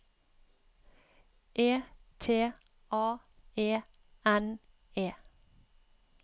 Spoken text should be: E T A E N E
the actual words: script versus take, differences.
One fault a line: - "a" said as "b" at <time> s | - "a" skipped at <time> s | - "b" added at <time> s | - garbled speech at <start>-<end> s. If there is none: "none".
none